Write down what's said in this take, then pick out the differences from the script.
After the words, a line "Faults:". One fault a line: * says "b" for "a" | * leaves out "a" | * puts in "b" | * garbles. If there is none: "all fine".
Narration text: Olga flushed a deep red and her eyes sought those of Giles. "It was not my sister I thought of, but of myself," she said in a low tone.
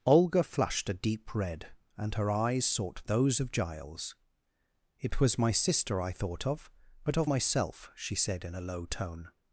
Olga flushed a deep red and her eyes sought those of Giles. "It was my sister I thought of, but of myself," she said in a low tone.
Faults:
* leaves out "not"